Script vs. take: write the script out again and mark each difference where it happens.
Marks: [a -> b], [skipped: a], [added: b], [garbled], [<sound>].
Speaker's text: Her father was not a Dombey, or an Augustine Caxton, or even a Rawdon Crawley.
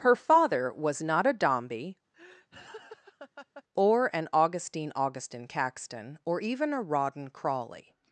Her father was not a Dombey, [laugh] or an Augustine [added: Augustine] Caxton, or even a Rawdon Crawley.